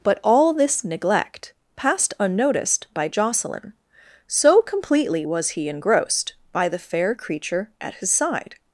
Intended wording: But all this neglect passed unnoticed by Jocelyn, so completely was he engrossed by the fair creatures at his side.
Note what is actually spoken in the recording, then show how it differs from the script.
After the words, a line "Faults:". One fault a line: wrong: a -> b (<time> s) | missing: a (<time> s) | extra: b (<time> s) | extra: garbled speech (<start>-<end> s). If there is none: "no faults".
But all this neglect passed unnoticed by Jocelyn, so completely was he engrossed by the fair creature at his side.
Faults:
wrong: creatures -> creature (7.1 s)